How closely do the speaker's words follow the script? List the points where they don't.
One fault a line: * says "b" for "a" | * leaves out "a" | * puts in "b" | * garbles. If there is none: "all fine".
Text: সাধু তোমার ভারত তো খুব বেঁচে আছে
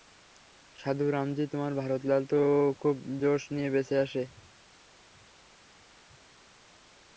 * puts in "রামজি"
* puts in "লাল"
* puts in "জোশ নিয়ে"